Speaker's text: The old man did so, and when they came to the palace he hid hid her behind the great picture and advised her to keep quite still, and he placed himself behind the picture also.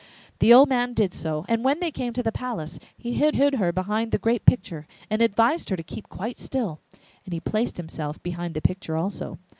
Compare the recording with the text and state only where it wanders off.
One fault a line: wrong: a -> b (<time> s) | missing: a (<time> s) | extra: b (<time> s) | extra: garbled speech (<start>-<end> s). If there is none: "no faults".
no faults